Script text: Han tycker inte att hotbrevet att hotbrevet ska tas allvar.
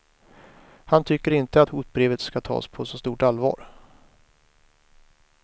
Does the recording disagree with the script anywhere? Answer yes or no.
yes